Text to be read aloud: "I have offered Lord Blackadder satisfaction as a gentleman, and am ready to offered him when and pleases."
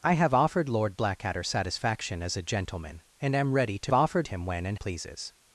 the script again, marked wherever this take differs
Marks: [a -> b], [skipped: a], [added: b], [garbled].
"I have offered Lord Blackadder satisfaction as a gentleman, and am ready to offered him when and pleases."